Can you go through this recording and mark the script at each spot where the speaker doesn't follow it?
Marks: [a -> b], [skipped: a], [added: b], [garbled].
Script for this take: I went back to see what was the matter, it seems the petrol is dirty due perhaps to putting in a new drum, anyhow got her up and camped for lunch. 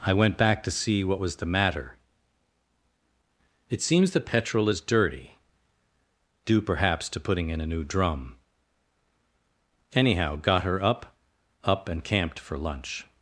I went back to see what was the matter, it seems the petrol is dirty due perhaps to putting in a new drum, anyhow got her up [added: up] and camped for lunch.